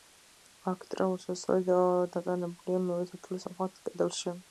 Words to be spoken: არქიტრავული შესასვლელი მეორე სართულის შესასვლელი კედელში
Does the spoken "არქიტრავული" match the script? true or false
true